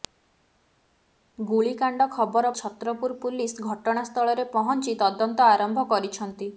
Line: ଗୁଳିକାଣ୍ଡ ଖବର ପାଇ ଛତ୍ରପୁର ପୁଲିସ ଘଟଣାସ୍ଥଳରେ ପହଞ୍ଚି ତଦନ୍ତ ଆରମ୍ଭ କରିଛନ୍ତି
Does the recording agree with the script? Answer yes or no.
no